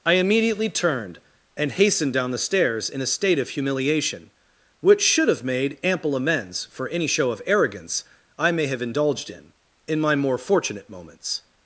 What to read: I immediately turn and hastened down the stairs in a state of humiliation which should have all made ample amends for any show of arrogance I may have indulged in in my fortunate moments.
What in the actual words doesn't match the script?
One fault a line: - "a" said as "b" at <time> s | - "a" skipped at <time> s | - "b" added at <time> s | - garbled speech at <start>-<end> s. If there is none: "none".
- "turn" said as "turned" at 0.7 s
- "all" skipped at 5.4 s
- "more" added at 10.2 s